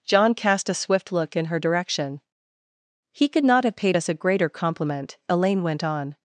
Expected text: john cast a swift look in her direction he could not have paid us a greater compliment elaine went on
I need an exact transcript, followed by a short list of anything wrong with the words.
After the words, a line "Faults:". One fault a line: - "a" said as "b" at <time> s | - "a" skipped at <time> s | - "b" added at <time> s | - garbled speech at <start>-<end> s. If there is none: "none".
john cast a swift look in her direction he could not have paid us a greater compliment elaine went on
Faults:
none